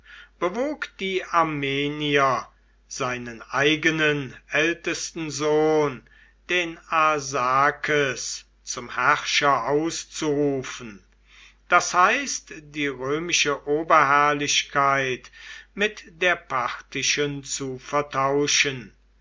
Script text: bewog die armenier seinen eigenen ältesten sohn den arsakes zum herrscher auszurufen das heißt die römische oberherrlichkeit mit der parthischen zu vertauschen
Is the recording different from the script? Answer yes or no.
no